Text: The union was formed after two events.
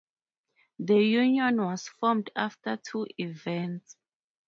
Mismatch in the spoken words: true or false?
false